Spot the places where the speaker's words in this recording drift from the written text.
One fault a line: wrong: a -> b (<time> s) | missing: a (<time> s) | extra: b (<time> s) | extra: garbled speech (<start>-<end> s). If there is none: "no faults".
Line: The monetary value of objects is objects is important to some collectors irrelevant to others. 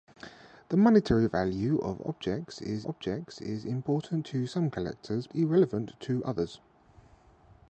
no faults